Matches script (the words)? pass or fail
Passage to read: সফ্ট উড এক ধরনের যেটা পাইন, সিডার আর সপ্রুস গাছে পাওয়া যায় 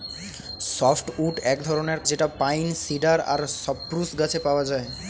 pass